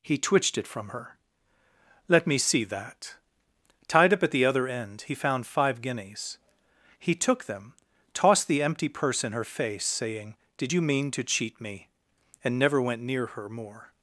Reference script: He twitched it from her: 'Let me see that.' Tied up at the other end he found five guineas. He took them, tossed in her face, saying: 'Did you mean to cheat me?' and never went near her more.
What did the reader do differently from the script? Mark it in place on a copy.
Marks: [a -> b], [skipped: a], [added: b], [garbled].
He twitched it from her: 'Let me see that.' Tied up at the other end he found five guineas. He took them, tossed [added: the empty purse] in her face, saying: 'Did you mean to cheat me?' and never went near her more.